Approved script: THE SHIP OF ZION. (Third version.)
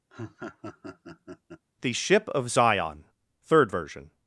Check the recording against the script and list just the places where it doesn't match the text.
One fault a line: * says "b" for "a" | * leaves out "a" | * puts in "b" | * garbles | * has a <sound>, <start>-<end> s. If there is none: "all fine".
* has a laugh, 0.1-1.6 s